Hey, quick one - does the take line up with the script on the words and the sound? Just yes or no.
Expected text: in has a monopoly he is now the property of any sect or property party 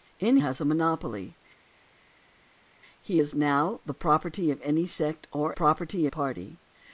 yes